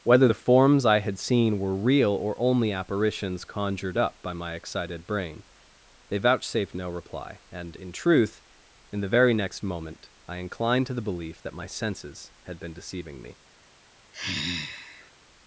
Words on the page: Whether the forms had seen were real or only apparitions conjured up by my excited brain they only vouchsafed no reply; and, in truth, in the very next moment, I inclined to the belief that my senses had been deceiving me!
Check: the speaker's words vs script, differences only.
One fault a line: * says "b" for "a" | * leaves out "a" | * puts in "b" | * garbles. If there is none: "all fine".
* puts in "I"
* leaves out "only"